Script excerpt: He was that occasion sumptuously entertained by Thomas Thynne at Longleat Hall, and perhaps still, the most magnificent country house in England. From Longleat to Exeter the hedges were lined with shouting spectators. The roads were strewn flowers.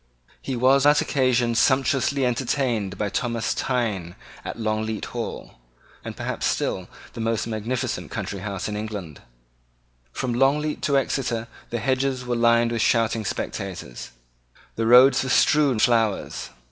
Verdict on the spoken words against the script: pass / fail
pass